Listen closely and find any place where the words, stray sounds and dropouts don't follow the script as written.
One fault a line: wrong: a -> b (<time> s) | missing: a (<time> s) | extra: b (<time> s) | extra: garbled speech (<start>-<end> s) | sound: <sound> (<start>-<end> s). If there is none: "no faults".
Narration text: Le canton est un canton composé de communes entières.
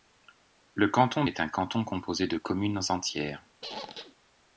sound: squeak (3.6-4.2 s)